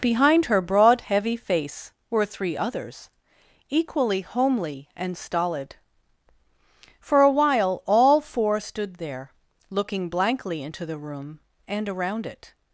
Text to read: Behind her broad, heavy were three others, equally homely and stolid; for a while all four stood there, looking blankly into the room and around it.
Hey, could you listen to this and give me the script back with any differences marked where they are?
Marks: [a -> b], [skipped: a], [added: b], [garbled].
Behind her broad, heavy [added: face] were three others, equally homely and stolid; for a while all four stood there, looking blankly into the room and around it.